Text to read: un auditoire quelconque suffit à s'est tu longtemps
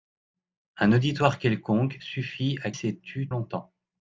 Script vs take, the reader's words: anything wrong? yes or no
no